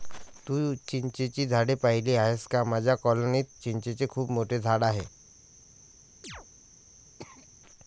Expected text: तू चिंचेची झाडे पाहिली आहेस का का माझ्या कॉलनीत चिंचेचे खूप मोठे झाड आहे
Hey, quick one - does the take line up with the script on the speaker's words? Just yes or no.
no